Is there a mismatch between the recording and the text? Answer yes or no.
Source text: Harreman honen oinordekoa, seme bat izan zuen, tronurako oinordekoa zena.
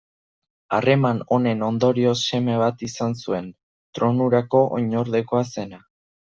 yes